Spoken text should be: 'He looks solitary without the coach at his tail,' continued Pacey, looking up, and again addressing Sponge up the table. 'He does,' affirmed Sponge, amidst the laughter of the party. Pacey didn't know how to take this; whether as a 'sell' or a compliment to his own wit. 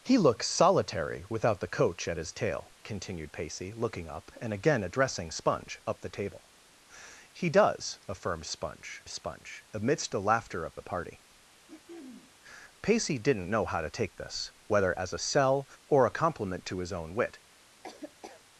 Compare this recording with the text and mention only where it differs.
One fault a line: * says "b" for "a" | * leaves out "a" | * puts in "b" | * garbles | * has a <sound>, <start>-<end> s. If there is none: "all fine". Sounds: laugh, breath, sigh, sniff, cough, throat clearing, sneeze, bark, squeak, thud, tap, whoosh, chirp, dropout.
* puts in "Sponge"
* has a throat clearing, 11.7-12.3 s
* has a laugh, 17.8-18.4 s